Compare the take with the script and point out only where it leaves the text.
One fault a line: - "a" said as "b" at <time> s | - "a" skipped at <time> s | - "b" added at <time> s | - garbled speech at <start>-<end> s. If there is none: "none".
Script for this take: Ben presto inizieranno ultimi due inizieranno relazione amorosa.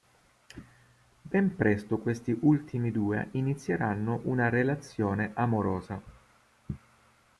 - "inizieranno" said as "questi" at 2.0 s
- "una" added at 4.2 s